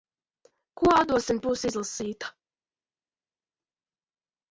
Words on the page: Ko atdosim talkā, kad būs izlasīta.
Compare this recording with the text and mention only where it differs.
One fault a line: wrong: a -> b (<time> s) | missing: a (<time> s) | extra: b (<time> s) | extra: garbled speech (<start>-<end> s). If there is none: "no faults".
missing: talkā kad (1.4 s)